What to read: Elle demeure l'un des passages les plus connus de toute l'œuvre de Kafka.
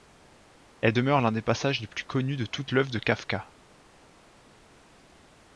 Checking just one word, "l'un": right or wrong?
right